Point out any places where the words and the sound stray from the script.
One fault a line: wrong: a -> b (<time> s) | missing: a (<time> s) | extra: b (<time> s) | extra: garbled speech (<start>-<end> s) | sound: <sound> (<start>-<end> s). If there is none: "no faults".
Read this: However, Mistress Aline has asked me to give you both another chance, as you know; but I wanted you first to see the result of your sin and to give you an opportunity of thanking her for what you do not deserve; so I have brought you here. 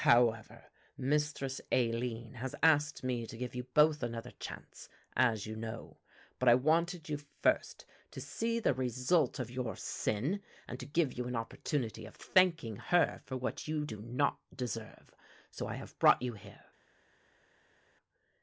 no faults